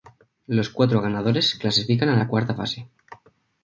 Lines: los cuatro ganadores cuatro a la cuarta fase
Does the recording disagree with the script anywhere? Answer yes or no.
yes